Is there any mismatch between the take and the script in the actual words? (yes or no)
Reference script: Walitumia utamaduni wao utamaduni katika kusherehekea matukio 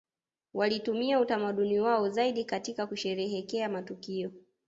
yes